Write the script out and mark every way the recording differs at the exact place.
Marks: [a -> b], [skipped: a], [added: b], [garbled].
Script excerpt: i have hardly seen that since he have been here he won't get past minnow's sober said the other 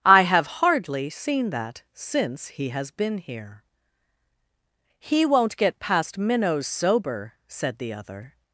i have hardly seen that since he [have -> has] been here he won't get past minnow's sober said the other